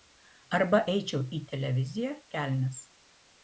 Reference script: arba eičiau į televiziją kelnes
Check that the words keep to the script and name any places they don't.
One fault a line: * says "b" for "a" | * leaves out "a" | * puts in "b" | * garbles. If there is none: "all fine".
all fine